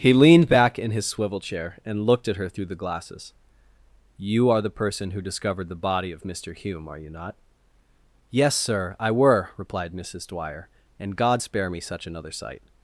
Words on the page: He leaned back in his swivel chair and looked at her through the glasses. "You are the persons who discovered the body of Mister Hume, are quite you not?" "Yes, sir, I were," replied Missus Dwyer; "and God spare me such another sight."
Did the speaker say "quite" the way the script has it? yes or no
no